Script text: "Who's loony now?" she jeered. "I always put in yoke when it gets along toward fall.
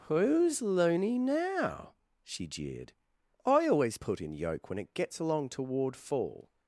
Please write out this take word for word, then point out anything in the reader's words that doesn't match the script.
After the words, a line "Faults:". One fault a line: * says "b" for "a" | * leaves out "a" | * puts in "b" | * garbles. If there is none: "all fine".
"Who's loony now?" she jeered. "I always put in yoke when it gets along toward fall.
Faults:
all fine